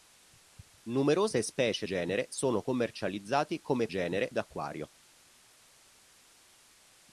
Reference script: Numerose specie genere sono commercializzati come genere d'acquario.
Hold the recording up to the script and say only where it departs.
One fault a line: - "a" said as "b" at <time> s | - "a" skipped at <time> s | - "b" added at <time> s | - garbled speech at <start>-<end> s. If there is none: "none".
none